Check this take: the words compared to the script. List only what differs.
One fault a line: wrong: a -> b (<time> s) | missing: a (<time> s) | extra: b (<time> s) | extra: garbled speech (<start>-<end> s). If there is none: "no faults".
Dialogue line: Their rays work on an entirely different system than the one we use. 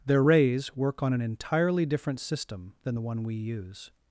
no faults